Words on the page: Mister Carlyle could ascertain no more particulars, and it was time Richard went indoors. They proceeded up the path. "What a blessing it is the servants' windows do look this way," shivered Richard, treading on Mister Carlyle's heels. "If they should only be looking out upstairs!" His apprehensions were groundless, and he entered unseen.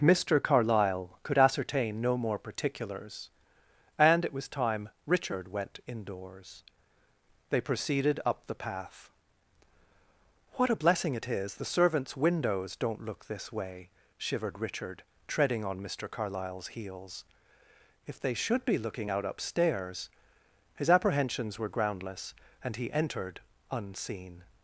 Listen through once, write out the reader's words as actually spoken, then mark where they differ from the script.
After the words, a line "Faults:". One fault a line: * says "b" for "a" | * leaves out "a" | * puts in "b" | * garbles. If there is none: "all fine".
Mister Carlyle could ascertain no more particulars, and it was time Richard went indoors. They proceeded up the path. "What a blessing it is the servants' windows don't look this way," shivered Richard, treading on Mister Carlyle's heels. "If they should be looking out upstairs!" His apprehensions were groundless, and he entered unseen.
Faults:
* says "don't" for "do"
* leaves out "only"